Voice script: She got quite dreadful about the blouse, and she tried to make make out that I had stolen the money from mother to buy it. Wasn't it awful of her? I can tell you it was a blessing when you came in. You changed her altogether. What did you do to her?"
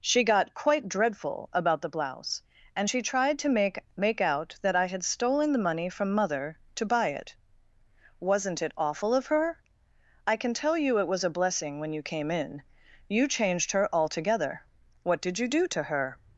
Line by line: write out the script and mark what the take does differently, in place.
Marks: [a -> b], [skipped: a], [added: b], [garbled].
She got quite dreadful about the blouse, and she tried to make make out that I had stolen the money from mother to buy it. Wasn't it awful of her? I can tell you it was a blessing when you came in. You changed her altogether. What did you do to her?"